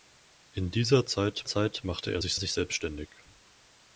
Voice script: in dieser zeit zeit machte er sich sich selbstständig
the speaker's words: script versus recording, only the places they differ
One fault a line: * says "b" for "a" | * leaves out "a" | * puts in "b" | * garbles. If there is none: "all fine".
all fine